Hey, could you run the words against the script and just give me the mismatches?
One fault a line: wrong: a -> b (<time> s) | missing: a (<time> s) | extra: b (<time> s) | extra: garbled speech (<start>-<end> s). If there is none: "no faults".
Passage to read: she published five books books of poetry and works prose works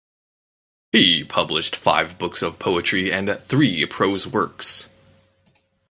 wrong: she -> he (0.9 s)
missing: books (2.4 s)
wrong: works -> three (3.4 s)